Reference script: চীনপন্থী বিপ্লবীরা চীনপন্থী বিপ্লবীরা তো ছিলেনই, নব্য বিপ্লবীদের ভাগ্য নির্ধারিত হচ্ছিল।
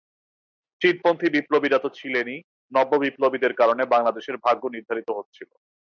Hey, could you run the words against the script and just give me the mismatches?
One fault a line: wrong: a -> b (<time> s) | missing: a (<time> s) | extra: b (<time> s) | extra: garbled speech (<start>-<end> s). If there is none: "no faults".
missing: চীনপন্থী বিপ্লবীরা (1.8 s)
extra: কারণে বাংলাদেশের (3.5 s)